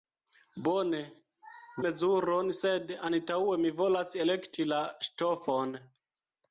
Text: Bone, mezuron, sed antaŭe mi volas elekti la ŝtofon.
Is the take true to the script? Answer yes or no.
yes